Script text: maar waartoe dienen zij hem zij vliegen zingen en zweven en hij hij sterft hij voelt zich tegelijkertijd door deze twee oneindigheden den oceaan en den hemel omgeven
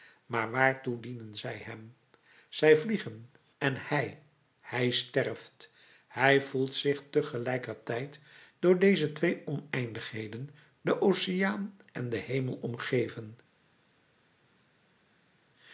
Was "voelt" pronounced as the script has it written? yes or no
yes